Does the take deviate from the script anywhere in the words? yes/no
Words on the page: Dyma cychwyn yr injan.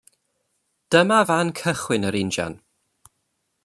yes